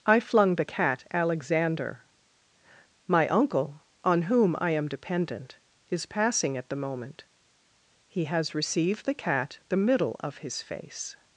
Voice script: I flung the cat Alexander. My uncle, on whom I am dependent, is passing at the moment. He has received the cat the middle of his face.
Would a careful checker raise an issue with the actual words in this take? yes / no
no